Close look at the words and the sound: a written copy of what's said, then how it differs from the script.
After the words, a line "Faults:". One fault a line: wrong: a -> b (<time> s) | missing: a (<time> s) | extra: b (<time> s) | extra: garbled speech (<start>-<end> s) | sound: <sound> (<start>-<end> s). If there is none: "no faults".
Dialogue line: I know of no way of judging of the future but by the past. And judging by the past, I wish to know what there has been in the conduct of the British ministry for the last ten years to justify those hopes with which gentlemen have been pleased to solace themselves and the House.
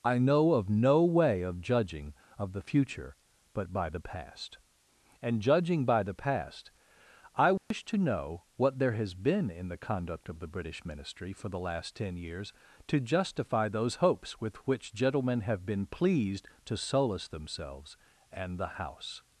I know of no way of judging of the future but by the past. And judging by the past, I wish to know what there has been in the conduct of the British ministry for the last ten years to justify those hopes with which gentlemen have been pleased to solace themselves and the House.
Faults:
sound: dropout (7.6-7.7 s)